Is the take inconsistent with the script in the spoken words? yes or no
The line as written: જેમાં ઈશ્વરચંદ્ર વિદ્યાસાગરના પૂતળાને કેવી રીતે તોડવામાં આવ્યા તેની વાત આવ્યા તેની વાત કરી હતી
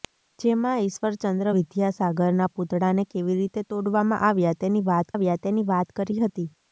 no